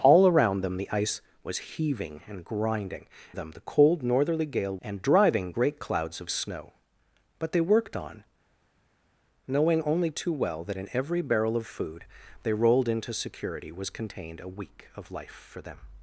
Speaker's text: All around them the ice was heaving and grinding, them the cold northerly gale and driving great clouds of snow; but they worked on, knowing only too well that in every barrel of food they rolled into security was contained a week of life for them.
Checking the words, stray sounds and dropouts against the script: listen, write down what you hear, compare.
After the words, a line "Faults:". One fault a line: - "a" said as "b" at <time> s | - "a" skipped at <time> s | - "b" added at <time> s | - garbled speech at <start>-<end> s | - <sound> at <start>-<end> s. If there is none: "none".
All around them the ice was heaving and grinding, them the cold northerly gale and driving great clouds of snow; but they worked on, knowing only too well that in every barrel of food they rolled into security was contained a week of life for them.
Faults:
none